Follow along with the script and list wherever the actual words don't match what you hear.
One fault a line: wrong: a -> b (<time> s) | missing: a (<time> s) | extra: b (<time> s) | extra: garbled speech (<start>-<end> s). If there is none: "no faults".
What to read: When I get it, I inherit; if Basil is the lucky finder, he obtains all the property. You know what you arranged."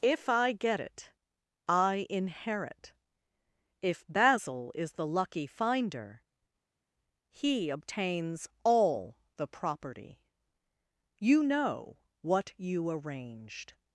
wrong: When -> If (0.0 s)